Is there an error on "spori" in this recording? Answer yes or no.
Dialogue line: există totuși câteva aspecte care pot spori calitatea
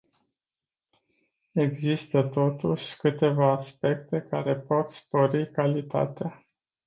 no